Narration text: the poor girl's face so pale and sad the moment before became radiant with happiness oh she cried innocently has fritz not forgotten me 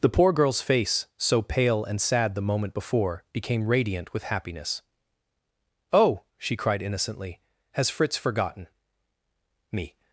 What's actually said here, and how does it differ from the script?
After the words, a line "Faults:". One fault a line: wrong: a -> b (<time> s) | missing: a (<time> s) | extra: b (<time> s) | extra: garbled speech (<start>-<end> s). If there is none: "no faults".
the poor girl's face so pale and sad the moment before became radiant with happiness oh she cried innocently has fritz forgotten me
Faults:
missing: not (8.1 s)